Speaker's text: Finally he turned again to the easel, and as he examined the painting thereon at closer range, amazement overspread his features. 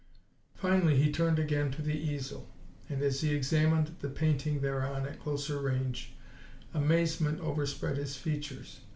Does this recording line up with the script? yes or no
yes